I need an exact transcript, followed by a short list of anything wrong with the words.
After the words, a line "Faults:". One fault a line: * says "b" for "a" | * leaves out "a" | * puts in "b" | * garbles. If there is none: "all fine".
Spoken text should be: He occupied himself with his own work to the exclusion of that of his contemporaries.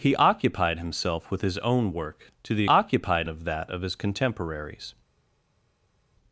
He occupied himself with his own work to the occupied of that of his contemporaries.
Faults:
* says "occupied" for "exclusion"